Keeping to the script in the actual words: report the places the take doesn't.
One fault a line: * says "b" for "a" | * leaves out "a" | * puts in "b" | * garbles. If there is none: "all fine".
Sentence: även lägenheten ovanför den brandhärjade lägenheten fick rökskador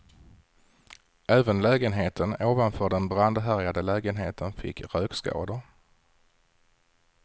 all fine